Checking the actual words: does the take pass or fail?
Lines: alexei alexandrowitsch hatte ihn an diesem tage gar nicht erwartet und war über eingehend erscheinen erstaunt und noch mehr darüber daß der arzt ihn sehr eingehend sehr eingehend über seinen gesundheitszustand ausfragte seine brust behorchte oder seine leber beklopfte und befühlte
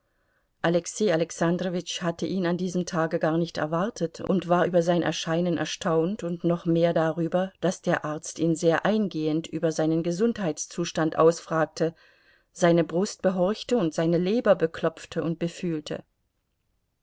fail